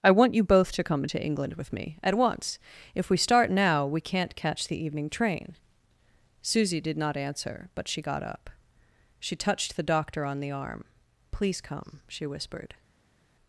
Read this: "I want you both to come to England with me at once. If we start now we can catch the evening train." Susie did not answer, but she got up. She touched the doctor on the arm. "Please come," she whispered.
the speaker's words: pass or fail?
fail